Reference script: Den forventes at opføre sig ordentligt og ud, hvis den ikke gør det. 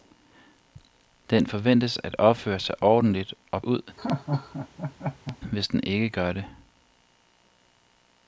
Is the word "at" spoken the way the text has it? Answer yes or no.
yes